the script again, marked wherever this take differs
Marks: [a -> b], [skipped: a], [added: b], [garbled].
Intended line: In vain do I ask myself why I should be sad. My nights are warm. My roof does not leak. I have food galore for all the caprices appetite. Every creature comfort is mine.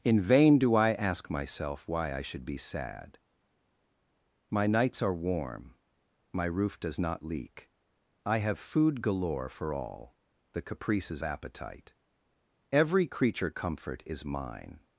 In vain do I ask myself why I should be sad. My nights are warm. My roof does not leak. I have food galore for all the caprices appetite. Every creature comfort is mine.